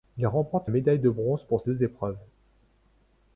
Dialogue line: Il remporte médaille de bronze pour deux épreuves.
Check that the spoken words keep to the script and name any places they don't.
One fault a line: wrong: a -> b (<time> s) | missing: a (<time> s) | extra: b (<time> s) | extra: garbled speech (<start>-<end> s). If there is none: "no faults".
no faults